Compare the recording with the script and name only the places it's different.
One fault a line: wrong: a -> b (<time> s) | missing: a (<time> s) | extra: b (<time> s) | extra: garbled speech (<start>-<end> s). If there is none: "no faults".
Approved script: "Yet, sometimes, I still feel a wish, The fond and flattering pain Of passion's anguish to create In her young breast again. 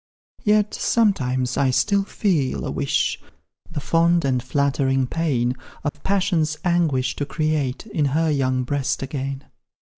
no faults